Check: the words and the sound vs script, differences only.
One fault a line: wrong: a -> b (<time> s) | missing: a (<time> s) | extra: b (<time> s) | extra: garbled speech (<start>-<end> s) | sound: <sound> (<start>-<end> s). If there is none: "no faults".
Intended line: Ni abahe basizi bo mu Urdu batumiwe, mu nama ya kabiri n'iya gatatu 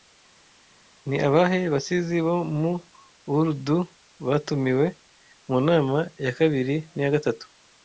no faults